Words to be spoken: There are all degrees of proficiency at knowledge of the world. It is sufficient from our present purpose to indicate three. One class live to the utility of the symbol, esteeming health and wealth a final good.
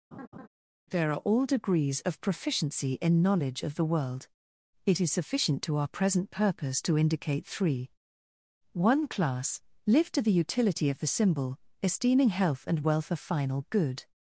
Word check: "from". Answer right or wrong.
wrong